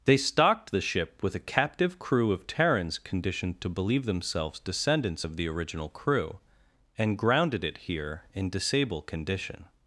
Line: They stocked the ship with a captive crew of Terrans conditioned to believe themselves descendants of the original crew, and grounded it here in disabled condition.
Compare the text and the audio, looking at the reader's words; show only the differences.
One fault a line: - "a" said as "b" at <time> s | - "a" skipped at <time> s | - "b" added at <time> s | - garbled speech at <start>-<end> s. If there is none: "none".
- "disabled" said as "disable" at 8.5 s